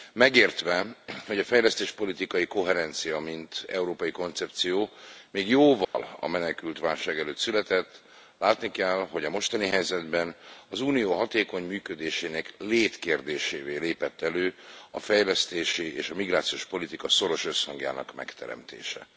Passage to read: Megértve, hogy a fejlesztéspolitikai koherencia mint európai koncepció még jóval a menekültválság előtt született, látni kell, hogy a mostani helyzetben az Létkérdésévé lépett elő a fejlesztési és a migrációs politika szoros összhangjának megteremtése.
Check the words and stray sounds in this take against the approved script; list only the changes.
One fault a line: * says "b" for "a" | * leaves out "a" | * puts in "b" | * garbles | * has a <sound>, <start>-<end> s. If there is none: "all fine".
* has a dropout, 5.8-5.9 s
* puts in "Unió hatékony működésének"